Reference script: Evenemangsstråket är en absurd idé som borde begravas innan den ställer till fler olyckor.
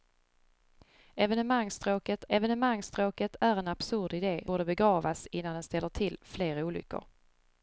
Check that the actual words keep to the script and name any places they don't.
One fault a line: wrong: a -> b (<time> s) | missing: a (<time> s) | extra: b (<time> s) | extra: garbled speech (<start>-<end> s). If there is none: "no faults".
extra: evenemangsstråket (2.3 s)
missing: som (4.5 s)